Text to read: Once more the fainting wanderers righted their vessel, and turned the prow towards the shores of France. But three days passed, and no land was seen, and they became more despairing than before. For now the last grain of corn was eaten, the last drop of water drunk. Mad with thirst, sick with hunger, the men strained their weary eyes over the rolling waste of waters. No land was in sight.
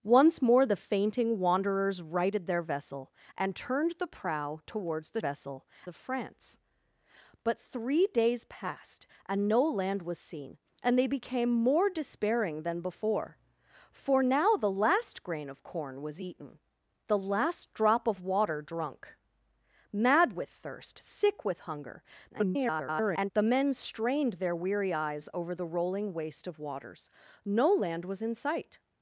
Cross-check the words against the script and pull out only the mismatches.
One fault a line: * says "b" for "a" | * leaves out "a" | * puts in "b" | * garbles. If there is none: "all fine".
* says "vessel" for "shores"
* garbles